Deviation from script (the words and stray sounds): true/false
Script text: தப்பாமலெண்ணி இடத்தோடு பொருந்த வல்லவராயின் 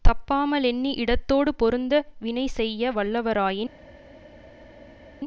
true